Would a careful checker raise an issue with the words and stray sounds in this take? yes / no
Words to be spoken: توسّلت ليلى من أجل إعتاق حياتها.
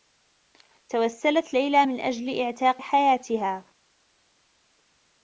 no